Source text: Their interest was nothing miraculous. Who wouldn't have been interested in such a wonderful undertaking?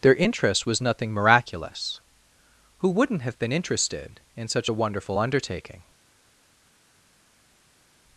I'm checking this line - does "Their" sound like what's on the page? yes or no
yes